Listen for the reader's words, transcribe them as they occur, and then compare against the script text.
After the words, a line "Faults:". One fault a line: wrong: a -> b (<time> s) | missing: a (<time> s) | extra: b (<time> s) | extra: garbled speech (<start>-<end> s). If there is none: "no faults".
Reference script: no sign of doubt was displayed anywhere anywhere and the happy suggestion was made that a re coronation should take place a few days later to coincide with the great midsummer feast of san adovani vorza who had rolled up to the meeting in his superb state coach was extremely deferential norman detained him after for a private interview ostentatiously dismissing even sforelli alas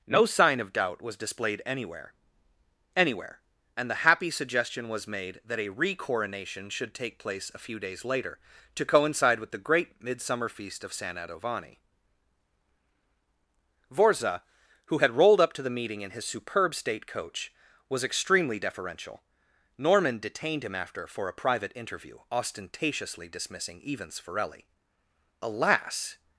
no sign of doubt was displayed anywhere anywhere and the happy suggestion was made that a re coronation should take place a few days later to coincide with the great midsummer feast of san adovani vorza who had rolled up to the meeting in his superb state coach was extremely deferential norman detained him after for a private interview ostentatiously dismissing even sforelli alas
Faults:
no faults